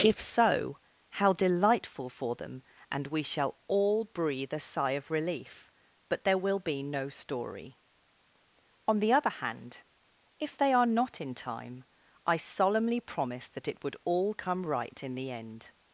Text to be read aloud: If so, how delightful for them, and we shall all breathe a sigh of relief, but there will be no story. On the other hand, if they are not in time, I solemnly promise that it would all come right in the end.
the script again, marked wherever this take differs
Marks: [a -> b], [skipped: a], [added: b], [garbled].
If so, how delightful for them, and we shall all breathe a sigh of relief, but there will be no story. On the other hand, if they are not in time, I solemnly promise that it would all come right in the end.